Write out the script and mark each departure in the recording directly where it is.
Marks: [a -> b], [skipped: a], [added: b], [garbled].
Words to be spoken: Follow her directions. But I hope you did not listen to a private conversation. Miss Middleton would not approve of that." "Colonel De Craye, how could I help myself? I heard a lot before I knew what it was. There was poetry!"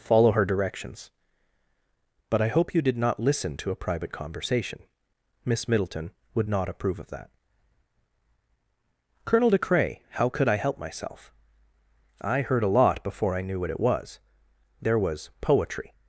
Follow her directions. But I hope you did not listen to a private conversation. Miss Middleton would not approve of that." "Colonel De Craye, how could I help myself? I heard a lot before I knew what it was. There was poetry!"